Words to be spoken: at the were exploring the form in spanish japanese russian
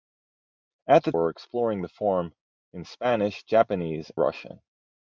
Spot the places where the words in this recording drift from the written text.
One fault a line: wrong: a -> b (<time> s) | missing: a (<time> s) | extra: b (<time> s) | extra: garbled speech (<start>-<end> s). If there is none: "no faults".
no faults